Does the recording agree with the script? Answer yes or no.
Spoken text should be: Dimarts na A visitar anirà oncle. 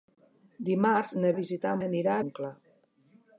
yes